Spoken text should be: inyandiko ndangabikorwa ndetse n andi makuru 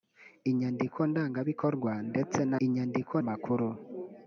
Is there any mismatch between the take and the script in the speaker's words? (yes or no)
yes